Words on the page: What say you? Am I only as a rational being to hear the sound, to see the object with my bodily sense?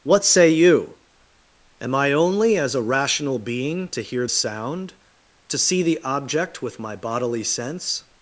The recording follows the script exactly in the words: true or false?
false